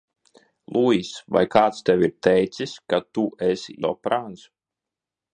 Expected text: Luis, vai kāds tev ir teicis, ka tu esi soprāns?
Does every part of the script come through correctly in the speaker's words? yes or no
yes